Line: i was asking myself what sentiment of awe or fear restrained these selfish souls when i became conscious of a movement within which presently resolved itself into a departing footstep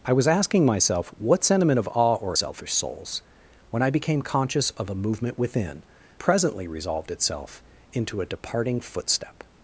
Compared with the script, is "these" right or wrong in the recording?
wrong